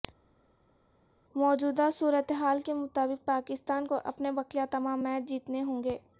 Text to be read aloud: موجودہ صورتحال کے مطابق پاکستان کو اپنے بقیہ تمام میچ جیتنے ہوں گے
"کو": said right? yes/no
yes